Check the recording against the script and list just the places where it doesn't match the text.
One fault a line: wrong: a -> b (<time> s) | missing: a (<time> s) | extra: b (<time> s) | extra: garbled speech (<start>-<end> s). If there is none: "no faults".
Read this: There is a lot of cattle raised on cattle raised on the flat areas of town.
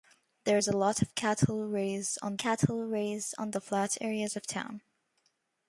no faults